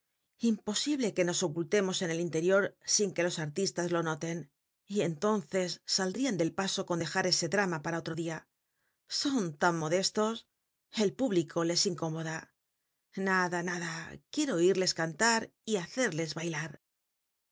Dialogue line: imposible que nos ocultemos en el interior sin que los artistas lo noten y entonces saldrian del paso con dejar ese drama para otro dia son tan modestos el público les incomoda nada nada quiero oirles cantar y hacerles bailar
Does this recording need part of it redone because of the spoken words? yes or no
no